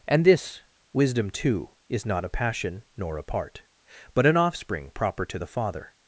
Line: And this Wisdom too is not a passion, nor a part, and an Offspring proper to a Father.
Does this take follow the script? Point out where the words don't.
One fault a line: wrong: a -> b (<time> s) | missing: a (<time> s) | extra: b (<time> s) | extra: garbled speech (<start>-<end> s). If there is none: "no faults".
wrong: and -> but (4.1 s)
wrong: a -> the (5.4 s)